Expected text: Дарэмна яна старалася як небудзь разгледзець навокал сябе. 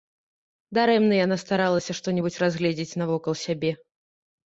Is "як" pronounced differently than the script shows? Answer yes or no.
yes